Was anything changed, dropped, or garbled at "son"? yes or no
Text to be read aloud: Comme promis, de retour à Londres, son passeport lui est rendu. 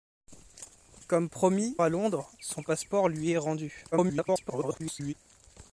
no